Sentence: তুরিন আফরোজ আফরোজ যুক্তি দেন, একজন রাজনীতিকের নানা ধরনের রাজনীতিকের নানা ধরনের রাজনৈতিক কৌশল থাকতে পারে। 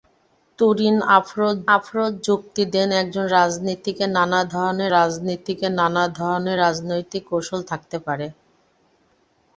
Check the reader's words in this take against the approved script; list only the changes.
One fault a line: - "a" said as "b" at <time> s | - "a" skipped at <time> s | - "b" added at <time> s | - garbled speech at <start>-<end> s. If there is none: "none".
none